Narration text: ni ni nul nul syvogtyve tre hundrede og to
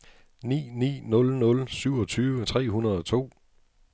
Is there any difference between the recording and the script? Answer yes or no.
no